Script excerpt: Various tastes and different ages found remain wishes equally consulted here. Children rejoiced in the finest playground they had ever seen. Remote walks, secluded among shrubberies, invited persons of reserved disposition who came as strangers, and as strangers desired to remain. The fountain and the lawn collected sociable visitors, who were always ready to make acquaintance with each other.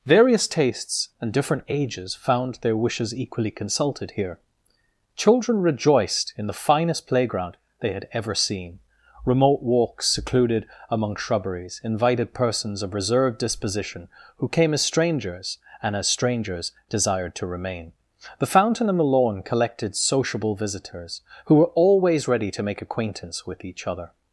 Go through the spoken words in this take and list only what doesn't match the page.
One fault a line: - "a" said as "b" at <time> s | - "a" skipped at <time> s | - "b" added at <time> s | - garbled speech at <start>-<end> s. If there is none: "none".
- "remain" said as "their" at 2.5 s